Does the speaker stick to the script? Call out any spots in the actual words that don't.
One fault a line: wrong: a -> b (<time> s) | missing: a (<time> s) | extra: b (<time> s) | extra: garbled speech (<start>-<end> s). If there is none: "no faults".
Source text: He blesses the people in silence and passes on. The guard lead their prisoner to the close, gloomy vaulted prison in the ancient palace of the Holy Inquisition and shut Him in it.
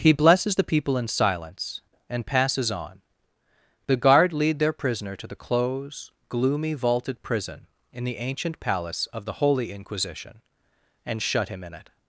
no faults